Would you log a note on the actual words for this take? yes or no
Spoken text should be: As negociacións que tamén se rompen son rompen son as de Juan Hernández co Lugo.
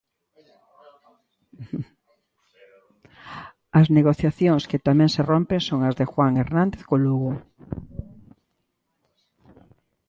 yes